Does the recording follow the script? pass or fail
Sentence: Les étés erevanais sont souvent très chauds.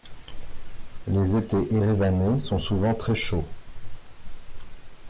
pass